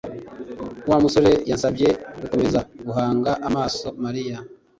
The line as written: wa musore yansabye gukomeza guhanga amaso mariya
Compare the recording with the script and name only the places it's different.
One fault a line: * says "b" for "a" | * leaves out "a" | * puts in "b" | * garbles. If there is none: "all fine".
all fine